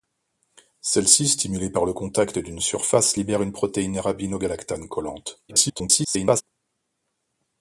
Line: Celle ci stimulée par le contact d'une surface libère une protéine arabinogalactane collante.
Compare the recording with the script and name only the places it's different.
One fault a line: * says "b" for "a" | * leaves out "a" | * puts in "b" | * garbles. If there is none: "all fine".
* garbles